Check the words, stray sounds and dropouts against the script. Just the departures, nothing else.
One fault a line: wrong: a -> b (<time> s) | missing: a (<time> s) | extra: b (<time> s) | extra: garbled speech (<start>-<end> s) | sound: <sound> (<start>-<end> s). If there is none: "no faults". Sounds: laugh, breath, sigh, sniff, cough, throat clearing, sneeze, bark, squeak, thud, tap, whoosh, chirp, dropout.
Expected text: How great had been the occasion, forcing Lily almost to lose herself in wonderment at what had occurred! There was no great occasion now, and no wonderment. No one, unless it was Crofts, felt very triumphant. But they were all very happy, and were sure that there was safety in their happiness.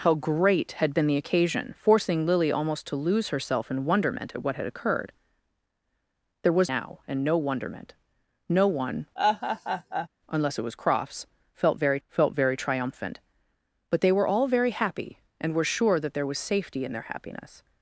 missing: no great occasion (6.7 s)
sound: laugh (9.2-10.1 s)
extra: felt very (12.1 s)